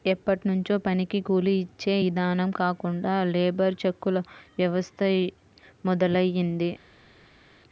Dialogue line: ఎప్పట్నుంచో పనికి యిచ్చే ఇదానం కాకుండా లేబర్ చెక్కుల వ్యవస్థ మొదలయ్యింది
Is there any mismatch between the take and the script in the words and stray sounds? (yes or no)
yes